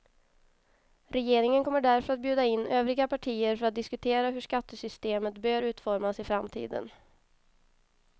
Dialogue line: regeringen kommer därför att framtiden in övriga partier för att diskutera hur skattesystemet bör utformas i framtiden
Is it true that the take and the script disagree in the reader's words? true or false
true